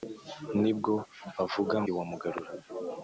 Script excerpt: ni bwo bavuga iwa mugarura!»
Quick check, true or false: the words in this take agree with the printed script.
true